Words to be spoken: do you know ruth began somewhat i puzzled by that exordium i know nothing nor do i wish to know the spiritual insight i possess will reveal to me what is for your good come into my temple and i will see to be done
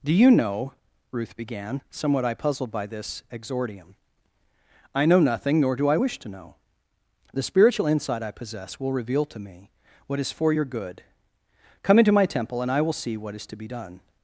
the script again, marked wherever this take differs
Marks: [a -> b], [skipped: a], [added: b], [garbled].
do you know ruth began somewhat i puzzled by [that -> this] exordium i know nothing nor do i wish to know the spiritual insight i possess will reveal to me what is for your good come into my temple and i will see [added: what is] to be done